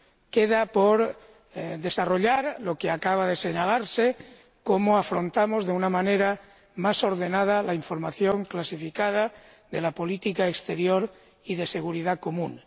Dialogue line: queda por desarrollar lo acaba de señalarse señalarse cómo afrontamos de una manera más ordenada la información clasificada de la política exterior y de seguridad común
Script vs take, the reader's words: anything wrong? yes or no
yes